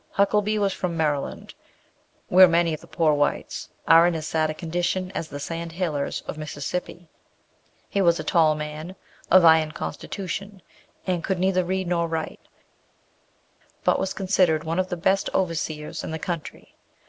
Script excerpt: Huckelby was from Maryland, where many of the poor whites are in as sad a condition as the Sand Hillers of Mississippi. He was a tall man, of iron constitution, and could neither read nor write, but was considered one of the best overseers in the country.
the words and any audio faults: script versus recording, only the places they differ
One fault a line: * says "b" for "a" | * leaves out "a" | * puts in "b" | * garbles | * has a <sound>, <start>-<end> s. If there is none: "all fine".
all fine